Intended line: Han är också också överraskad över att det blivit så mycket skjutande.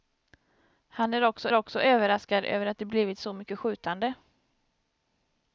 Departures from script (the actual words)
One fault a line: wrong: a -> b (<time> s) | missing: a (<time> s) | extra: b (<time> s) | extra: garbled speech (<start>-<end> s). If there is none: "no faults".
no faults